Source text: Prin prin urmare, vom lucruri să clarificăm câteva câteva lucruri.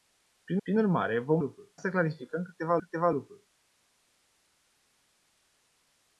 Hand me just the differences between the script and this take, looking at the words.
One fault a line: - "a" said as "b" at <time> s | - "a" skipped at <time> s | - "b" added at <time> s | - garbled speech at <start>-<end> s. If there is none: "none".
none